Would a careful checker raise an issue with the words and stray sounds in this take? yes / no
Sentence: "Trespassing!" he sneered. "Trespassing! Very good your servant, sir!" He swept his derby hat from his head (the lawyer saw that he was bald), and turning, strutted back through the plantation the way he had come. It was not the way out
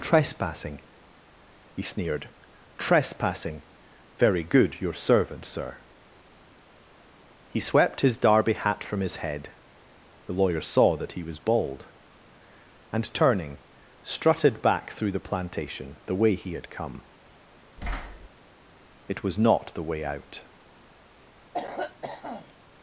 yes